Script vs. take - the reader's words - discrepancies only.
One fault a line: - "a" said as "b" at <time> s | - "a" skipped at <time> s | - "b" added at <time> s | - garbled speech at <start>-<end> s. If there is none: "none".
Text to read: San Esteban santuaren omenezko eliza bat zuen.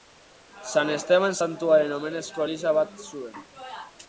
none